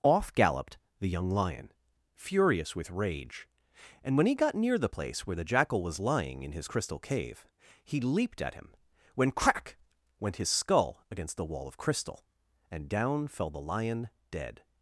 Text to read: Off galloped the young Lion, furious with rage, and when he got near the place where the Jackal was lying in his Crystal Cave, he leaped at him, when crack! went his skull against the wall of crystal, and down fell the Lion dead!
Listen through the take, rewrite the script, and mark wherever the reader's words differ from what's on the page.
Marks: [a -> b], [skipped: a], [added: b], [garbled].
Off galloped the young Lion, furious with rage, and when he got near the place where the Jackal was lying in his Crystal Cave, he leaped at him, when crack! went his skull against the wall of crystal, and down fell the Lion dead!